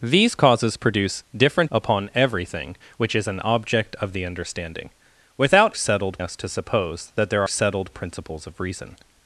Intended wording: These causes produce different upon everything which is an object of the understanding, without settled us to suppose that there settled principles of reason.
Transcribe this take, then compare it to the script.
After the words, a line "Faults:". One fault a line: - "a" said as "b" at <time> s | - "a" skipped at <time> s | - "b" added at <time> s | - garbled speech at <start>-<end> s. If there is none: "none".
These causes produce different upon everything which is an object of the understanding, without settled us to suppose that there settled principles of reason.
Faults:
none